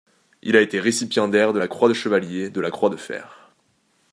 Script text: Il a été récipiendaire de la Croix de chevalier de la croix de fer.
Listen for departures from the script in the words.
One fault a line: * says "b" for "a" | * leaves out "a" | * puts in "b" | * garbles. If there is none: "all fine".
all fine